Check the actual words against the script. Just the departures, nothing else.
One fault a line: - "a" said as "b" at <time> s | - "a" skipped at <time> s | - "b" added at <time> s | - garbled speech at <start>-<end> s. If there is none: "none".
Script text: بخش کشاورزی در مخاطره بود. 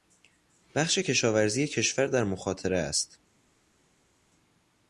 - "کشور" added at 1.7 s
- "بود" said as "است" at 2.8 s